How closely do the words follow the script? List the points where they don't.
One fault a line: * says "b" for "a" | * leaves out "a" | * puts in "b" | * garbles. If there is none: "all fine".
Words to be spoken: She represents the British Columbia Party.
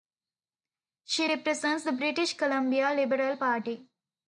* puts in "Liberal"